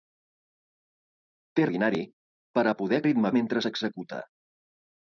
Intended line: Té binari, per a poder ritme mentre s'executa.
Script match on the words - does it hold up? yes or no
yes